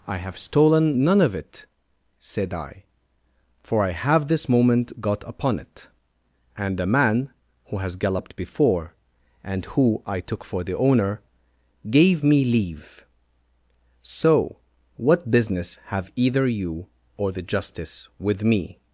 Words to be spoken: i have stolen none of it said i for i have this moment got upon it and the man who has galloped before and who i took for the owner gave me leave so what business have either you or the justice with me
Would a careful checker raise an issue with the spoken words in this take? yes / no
no